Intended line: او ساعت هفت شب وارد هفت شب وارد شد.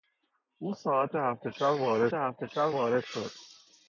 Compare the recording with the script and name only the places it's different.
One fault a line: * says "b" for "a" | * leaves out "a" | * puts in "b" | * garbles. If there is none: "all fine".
all fine